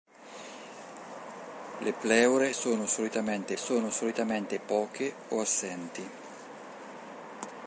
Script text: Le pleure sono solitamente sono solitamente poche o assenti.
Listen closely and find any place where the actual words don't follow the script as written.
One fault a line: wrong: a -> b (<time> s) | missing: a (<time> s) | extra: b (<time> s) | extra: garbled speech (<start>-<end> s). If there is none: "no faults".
no faults